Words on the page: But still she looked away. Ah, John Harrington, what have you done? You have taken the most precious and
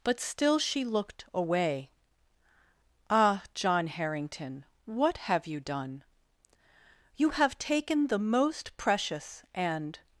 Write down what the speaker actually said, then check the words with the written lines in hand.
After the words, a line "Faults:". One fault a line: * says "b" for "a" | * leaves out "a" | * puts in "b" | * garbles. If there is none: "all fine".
But still she looked away. Ah, John Harrington, what have you done? You have taken the most precious and
Faults:
all fine